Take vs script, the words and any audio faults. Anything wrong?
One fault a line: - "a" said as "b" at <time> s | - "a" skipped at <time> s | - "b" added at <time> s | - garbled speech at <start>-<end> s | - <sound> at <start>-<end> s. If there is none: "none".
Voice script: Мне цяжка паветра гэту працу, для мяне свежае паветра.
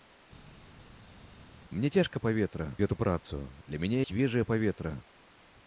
none